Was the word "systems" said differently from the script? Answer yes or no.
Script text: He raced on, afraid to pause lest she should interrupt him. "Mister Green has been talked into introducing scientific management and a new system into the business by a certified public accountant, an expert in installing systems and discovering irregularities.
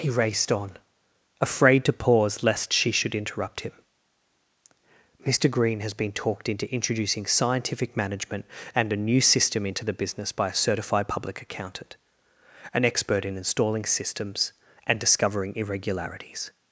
no